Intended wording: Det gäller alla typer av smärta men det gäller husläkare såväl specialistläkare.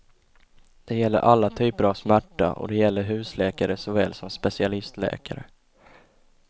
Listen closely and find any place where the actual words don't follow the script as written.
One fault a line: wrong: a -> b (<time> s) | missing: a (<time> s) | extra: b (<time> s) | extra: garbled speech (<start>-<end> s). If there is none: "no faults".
wrong: men -> och (2.5 s)
extra: som (4.1 s)